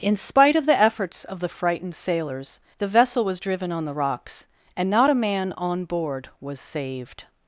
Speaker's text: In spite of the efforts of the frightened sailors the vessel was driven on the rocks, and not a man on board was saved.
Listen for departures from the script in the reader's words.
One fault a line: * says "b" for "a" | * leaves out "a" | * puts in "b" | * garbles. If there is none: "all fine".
all fine